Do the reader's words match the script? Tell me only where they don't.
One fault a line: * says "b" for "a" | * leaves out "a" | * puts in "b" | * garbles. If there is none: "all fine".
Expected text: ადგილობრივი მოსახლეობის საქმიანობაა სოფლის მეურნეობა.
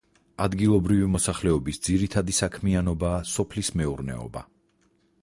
* puts in "ძირითადი"